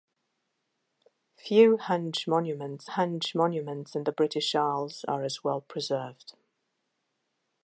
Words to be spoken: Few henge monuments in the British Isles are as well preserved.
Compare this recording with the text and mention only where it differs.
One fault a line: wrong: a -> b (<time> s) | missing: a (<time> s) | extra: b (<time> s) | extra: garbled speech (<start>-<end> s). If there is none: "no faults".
extra: henge monuments (2.9 s)